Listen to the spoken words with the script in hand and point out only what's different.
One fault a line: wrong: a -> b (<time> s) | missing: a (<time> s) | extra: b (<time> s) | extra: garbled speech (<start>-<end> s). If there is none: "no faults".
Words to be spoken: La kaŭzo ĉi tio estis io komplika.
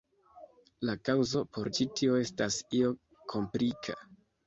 extra: por (1.6 s)
wrong: estis -> estas (2.3 s)